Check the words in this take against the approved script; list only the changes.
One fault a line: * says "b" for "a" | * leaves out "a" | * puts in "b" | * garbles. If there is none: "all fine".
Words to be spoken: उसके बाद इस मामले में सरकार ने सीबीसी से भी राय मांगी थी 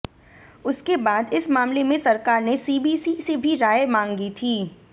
all fine